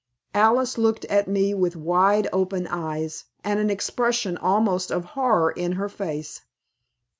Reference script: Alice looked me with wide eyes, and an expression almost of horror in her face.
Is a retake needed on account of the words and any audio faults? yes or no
yes